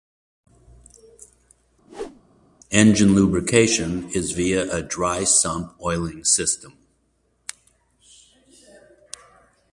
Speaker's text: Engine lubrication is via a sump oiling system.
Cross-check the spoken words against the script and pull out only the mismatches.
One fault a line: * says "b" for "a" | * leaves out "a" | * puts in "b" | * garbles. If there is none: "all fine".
* puts in "dry"